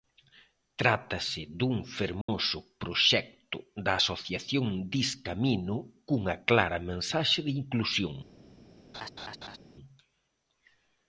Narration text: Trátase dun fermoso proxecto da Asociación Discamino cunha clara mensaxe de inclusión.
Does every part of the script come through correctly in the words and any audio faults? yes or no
no